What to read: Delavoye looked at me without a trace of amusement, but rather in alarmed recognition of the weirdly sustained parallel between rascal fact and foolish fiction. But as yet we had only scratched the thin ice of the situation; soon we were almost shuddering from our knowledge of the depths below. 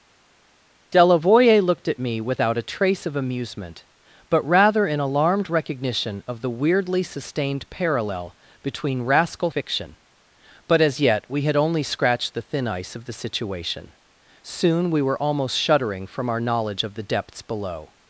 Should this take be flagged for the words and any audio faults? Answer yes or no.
yes